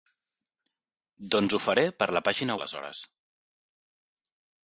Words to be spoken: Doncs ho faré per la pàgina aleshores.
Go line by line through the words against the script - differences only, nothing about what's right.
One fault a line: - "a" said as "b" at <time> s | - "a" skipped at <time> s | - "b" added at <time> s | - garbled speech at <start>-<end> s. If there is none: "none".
none